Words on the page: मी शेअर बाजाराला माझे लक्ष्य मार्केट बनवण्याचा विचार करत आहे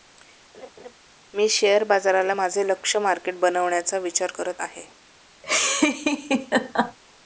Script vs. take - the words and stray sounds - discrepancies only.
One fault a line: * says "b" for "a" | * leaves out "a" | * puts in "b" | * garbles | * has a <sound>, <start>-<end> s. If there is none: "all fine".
* has a laugh, 0.5-0.9 s
* has a laugh, 5.4-7.0 s